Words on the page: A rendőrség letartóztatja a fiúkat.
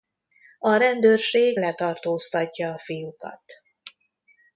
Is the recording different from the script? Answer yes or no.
no